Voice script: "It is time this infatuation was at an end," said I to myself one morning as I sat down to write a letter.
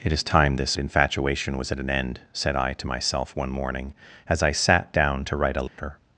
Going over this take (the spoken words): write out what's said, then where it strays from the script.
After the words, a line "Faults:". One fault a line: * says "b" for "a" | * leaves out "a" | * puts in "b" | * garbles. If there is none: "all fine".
"It is time this infatuation was at an end," said I to myself one morning as I sat down to write a letter.
Faults:
all fine